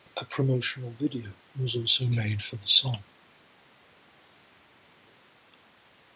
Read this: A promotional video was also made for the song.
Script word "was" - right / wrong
right